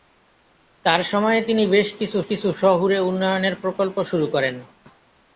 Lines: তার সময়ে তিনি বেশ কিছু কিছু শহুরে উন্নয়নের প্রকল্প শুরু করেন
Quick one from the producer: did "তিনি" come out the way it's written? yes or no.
yes